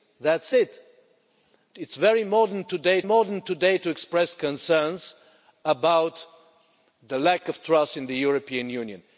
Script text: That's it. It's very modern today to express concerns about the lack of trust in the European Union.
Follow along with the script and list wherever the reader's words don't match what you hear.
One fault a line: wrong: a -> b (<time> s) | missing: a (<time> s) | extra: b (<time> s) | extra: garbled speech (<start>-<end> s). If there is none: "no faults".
extra: modern today (3.0 s)